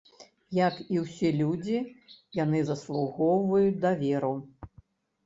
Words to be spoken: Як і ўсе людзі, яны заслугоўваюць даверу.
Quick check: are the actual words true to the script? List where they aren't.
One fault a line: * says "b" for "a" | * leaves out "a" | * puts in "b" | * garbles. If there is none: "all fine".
all fine